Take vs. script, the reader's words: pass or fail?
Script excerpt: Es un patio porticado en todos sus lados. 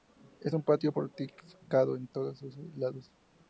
pass